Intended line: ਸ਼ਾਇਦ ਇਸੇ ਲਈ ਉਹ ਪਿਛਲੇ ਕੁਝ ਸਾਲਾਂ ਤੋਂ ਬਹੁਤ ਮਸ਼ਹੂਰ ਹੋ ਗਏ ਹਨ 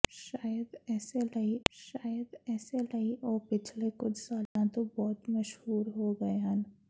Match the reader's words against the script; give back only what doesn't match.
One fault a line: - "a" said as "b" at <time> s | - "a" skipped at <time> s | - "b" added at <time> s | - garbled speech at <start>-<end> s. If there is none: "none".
- "ਸ਼ਾਇਦ ਇਸੇ ਲਈ" added at 1.7 s